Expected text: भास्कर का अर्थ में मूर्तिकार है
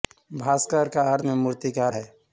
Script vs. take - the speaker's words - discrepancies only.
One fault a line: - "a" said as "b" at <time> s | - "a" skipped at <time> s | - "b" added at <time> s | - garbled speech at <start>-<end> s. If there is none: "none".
none